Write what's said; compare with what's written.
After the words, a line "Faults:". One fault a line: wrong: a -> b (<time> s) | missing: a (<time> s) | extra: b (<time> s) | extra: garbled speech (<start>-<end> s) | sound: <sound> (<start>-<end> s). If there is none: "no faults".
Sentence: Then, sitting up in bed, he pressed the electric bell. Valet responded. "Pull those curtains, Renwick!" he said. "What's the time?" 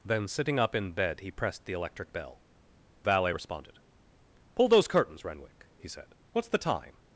Then, sitting up in bed, he pressed the electric bell. Valet responded. "Pull those curtains, Renwick!" he said. "What's the time?"
Faults:
no faults